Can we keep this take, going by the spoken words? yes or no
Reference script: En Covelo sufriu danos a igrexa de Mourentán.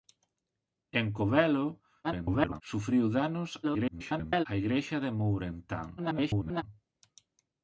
no